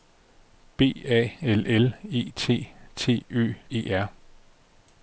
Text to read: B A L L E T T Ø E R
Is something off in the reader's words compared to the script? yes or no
no